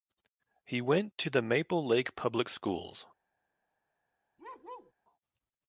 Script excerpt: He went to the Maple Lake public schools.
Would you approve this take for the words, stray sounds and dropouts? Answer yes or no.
no